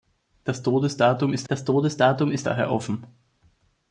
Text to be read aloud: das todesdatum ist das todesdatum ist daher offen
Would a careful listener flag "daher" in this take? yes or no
no